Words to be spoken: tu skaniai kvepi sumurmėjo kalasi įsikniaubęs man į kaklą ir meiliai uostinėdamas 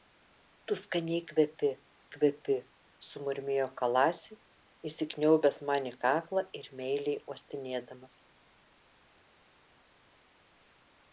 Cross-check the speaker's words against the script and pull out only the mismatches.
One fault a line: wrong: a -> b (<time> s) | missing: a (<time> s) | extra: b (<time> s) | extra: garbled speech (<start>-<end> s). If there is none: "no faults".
extra: kvepi (2.2 s)